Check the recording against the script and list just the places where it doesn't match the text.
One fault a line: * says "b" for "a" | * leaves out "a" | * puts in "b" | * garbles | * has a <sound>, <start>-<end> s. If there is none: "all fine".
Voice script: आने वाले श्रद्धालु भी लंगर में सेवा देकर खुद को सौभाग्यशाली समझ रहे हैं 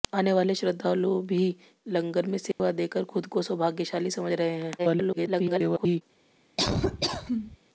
* has a dropout, 2.5-2.6 s
* garbles
* has a laugh, 6.6-7.6 s